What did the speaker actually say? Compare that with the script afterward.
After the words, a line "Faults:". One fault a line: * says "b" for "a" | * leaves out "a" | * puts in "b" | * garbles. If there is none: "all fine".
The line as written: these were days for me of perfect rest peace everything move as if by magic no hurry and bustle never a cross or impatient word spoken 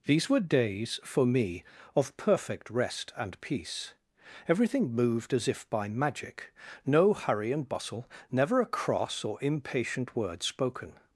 these were days for me of perfect rest and peace everything moved as if by magic no hurry and bustle never a cross or impatient word spoken
Faults:
* puts in "and"
* says "moved" for "move"